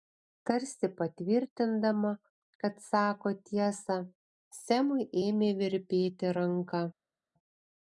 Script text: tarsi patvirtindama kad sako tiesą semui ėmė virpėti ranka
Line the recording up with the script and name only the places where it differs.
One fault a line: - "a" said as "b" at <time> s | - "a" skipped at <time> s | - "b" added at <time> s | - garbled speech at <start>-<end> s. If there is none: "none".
none